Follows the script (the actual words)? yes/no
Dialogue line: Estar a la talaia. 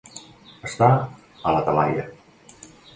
yes